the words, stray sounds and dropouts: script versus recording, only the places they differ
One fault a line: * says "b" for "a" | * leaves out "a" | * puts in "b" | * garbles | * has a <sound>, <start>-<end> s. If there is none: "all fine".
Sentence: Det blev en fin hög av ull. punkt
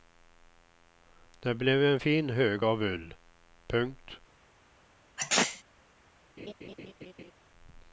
* has a sneeze, 5.2-5.6 s
* has a laugh, 6.4-7.3 s